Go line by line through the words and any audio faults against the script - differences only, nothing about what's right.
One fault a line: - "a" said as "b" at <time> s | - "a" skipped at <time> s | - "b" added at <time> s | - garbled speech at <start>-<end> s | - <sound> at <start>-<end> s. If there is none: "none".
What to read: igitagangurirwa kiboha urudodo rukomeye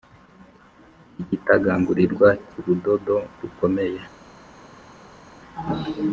- "kiboha" skipped at 2.3 s